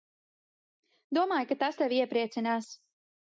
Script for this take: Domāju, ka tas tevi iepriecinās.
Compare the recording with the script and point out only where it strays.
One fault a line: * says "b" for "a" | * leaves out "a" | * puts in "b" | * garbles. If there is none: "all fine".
all fine